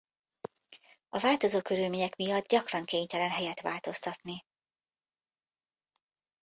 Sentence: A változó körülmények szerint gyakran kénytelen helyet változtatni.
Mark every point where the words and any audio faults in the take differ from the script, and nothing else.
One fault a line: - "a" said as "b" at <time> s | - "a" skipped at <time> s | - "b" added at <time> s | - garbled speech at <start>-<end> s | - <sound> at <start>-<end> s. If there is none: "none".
- "szerint" said as "miatt" at 2.2 s